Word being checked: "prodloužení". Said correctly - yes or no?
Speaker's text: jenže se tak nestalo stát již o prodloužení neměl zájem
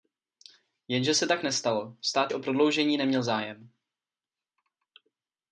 yes